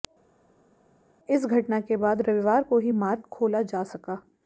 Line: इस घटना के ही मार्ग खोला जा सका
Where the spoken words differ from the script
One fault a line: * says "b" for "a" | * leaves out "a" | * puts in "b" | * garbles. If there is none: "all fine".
* puts in "बाद रविवार को"